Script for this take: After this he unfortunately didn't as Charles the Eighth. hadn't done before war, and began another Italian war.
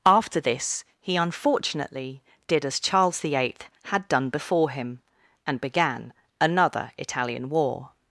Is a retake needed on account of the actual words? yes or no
yes